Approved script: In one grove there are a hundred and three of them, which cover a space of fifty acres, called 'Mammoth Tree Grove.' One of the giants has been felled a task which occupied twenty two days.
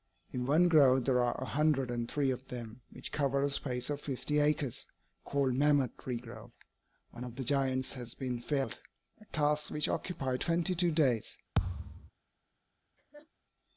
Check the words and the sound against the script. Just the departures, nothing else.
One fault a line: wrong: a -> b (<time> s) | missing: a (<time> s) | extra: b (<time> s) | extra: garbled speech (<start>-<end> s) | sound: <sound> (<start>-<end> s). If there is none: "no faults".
sound: thud (11.6-12.1 s)
sound: laugh (13.0-13.3 s)